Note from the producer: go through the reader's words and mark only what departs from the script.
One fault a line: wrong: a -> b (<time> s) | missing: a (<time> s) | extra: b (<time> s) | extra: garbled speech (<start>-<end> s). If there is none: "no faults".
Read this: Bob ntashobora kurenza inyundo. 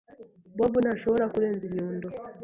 no faults